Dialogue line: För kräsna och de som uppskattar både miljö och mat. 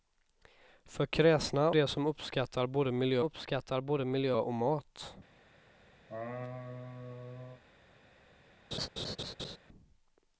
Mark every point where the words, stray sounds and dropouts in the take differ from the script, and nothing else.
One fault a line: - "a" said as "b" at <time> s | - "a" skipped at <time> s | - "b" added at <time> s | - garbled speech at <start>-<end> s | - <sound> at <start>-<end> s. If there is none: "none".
- "och" skipped at 1.7 s
- "uppskattar både miljö" added at 3.2 s
- laugh at 6.1-7.6 s
- laugh at 8.7-9.6 s